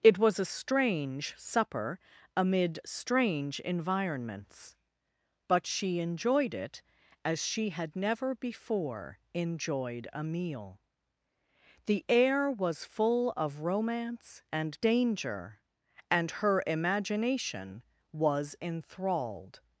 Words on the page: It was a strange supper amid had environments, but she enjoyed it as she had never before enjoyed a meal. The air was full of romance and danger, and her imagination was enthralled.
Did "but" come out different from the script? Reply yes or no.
no